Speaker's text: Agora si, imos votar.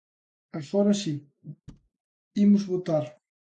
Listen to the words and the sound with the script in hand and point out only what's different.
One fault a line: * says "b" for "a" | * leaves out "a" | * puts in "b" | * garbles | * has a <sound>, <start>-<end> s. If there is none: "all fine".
* has a thud, 1.7-1.9 s